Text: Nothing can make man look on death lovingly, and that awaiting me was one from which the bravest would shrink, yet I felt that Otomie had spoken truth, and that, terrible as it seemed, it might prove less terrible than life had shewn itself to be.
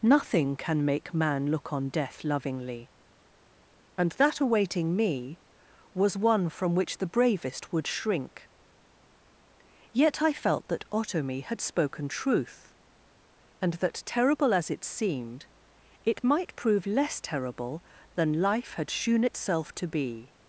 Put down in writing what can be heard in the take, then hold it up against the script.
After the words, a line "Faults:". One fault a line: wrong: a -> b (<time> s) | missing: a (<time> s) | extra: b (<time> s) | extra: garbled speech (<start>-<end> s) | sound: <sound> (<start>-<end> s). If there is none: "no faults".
Nothing can make man look on death lovingly, and that awaiting me was one from which the bravest would shrink, yet I felt that Otomie had spoken truth, and that, terrible as it seemed, it might prove less terrible than life had shewn itself to be.
Faults:
no faults